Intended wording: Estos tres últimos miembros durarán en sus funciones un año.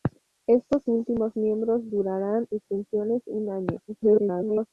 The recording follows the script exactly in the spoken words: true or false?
false